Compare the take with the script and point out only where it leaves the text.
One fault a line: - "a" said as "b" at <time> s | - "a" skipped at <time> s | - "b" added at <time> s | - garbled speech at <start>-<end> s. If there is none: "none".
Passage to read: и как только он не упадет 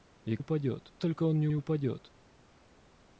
- "как" said as "упадет" at 0.4 s
- "не" added at 1.5 s